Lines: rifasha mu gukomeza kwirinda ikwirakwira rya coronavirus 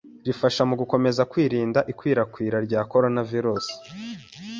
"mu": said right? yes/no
yes